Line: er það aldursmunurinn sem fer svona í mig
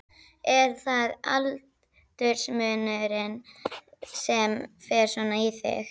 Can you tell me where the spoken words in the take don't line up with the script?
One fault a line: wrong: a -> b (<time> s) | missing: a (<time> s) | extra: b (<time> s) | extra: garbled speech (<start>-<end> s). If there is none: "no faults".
wrong: mig -> þig (5.6 s)